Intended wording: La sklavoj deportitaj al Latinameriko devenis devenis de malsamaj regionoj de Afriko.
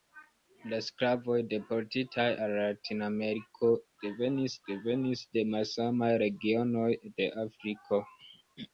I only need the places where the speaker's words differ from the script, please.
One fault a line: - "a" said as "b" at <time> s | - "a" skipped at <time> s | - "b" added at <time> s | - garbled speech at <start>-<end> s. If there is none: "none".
none